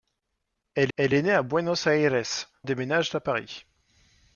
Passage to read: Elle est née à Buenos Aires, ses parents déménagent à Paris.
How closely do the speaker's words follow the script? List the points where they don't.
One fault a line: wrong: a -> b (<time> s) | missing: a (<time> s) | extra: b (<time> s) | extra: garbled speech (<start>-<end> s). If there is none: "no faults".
extra: elle (0.9 s)
missing: ses parents (2.2 s)